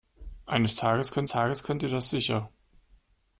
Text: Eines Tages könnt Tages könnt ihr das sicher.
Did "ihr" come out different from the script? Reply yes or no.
no